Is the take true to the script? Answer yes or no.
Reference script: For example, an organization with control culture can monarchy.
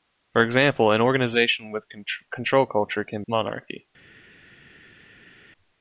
yes